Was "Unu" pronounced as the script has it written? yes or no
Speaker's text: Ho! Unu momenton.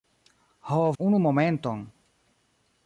yes